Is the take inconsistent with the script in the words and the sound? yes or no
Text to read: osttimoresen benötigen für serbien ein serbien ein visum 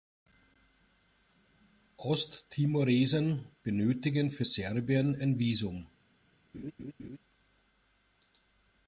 yes